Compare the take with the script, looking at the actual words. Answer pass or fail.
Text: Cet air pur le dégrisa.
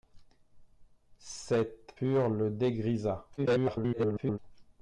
fail